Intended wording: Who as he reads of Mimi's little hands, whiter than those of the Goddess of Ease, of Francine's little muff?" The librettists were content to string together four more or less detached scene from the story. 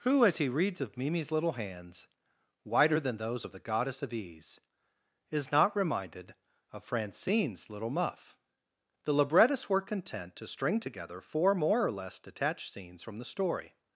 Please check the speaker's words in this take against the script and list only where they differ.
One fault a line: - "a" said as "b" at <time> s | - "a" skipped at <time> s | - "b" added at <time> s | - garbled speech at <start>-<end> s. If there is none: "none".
- "is not reminded" added at 5.3 s
- "scene" said as "scenes" at 12.7 s